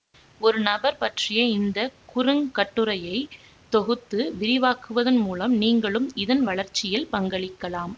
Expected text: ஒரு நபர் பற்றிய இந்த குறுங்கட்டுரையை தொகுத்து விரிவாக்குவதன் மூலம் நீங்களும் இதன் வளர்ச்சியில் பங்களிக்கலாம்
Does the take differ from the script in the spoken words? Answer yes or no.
no